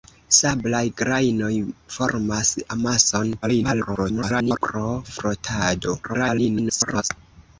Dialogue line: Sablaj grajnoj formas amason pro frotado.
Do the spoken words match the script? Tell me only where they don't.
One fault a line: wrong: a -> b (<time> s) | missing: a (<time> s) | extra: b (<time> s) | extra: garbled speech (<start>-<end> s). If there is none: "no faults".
extra: garbled speech (3.4-4.6 s)
extra: garbled speech (6.0-7.1 s)